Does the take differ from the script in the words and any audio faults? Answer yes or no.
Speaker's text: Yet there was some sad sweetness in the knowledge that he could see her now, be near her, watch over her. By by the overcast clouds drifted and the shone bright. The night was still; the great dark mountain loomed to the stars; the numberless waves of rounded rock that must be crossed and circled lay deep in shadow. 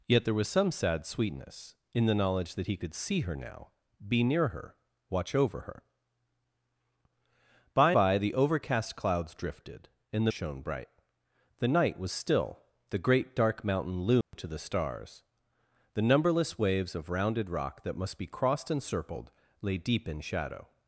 yes